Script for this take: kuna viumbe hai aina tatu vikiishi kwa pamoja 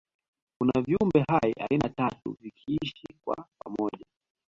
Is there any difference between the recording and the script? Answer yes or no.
no